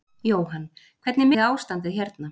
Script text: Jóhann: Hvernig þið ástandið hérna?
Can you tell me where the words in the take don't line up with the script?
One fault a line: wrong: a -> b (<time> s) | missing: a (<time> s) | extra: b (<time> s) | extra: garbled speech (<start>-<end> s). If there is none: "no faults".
no faults